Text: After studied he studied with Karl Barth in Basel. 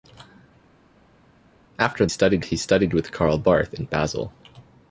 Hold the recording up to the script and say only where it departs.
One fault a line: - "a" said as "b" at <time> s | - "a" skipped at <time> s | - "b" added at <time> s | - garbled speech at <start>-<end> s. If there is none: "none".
none